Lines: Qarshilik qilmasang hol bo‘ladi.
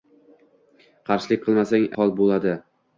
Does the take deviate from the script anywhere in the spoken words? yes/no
no